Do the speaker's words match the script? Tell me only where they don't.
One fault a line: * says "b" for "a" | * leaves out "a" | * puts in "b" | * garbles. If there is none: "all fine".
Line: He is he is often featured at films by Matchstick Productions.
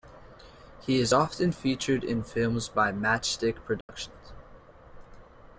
* leaves out "he is"
* says "in" for "at"